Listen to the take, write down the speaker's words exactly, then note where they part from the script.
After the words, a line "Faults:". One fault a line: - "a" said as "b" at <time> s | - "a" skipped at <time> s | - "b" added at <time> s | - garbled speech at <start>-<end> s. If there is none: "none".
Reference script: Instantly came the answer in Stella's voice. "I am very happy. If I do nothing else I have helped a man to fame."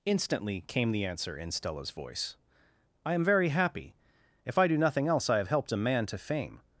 Instantly came the answer in Stella's voice. "I am very happy. If I do nothing else I have helped a man to fame."
Faults:
none